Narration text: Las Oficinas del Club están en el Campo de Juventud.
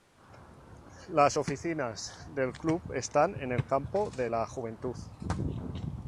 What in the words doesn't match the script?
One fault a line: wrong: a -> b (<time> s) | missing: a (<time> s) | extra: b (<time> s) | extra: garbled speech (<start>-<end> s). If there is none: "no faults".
extra: la (4.3 s)